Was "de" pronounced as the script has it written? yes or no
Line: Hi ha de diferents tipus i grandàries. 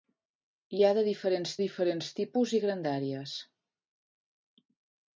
yes